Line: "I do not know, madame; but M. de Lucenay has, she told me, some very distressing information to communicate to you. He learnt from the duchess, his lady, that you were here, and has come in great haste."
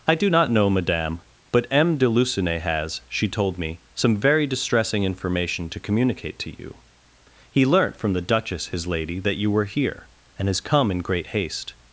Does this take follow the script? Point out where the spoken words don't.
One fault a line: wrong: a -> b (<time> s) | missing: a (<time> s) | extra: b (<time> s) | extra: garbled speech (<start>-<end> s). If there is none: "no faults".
no faults